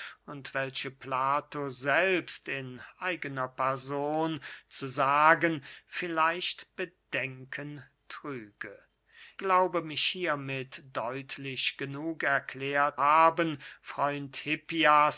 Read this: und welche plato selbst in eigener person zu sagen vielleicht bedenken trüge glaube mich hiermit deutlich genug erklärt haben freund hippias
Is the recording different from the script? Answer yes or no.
no